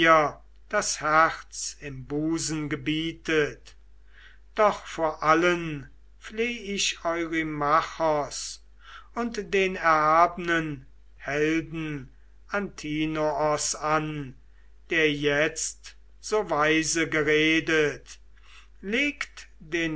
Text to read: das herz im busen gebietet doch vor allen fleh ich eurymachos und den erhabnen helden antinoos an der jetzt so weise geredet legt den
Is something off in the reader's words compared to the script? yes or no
no